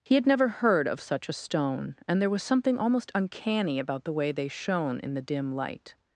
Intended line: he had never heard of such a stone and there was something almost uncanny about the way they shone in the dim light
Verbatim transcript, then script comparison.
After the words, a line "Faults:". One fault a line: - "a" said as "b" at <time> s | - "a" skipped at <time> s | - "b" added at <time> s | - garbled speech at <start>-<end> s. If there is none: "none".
he had never heard of such a stone and there was something almost uncanny about the way they shone in the dim light
Faults:
none